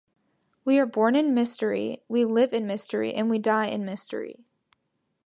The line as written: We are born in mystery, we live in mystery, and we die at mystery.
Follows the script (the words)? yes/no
no